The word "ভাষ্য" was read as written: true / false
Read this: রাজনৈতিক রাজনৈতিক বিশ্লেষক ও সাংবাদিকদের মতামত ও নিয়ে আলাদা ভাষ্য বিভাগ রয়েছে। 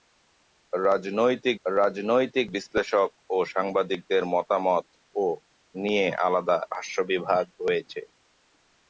true